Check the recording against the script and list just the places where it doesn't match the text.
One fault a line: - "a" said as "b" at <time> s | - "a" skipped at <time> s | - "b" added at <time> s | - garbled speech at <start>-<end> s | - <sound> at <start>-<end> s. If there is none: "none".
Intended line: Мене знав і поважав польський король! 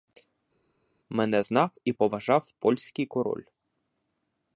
none